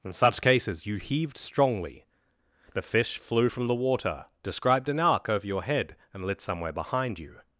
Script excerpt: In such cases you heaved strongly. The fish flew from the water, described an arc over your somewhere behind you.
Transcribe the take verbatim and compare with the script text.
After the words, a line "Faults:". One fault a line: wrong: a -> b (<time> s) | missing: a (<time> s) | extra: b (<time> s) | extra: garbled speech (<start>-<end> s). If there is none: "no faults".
In such cases you heaved strongly. The fish flew from the water, described an arc over your head, and lit somewhere behind you.
Faults:
extra: head and lit (5.6 s)